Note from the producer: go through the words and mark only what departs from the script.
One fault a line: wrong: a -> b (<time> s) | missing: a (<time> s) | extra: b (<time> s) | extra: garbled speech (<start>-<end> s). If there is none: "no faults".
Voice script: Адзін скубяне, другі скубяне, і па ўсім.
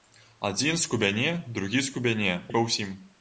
no faults